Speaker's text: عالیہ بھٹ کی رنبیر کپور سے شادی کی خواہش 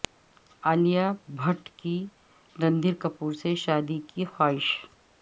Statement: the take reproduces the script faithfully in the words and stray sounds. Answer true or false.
true